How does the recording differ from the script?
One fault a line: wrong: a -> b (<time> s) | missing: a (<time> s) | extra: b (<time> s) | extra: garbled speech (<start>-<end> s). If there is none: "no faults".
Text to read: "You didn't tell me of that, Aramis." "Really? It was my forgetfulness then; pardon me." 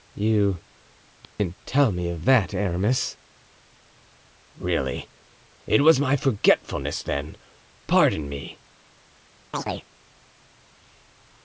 no faults